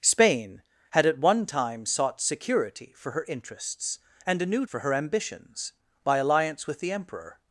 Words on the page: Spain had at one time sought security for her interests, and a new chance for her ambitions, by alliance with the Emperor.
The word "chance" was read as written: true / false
false